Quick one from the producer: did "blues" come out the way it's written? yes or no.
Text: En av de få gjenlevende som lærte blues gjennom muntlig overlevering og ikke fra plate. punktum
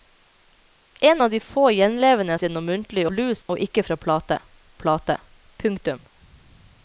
no